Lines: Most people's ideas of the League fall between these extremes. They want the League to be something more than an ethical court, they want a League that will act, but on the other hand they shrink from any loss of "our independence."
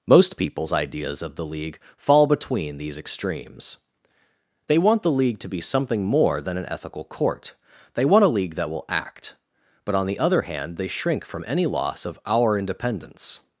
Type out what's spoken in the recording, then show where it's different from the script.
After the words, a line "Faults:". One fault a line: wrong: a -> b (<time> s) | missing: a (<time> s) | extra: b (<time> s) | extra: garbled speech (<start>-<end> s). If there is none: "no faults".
Most people's ideas of the League fall between these extremes. They want the League to be something more than an ethical court, they want a League that will act, but on the other hand they shrink from any loss of "our independence."
Faults:
no faults